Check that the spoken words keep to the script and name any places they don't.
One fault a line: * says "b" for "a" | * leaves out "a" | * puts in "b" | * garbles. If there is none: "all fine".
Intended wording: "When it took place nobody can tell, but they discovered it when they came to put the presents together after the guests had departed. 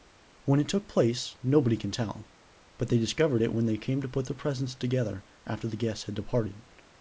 all fine